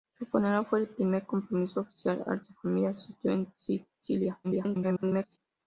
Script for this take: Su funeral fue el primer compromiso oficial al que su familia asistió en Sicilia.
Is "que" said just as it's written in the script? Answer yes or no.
no